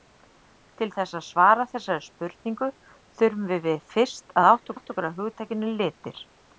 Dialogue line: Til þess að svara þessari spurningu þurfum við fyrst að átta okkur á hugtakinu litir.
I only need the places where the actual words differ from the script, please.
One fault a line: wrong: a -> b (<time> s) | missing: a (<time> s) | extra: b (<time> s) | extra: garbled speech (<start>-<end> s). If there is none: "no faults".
extra: átta (4.7 s)